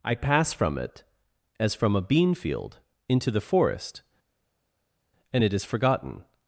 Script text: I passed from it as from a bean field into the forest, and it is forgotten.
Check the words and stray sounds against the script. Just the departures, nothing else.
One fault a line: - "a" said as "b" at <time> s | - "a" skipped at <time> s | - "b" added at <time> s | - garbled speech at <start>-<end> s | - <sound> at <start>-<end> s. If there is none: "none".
- "passed" said as "pass" at 0.1 s